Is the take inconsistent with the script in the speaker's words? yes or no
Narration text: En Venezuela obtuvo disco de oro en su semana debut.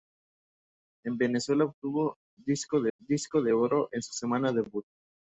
yes